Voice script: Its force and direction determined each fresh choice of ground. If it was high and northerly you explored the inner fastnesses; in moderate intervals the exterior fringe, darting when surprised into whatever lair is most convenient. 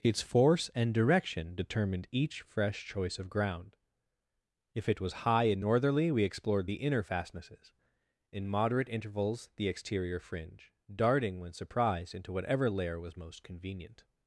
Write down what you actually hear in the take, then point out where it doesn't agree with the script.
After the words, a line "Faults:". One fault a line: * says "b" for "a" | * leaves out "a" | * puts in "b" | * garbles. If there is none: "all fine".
Its force and direction determined each fresh choice of ground. If it was high and northerly we explored the inner fastnesses; in moderate intervals the exterior fringe, darting when surprised into whatever lair was most convenient.
Faults:
* says "we" for "you"
* says "was" for "is"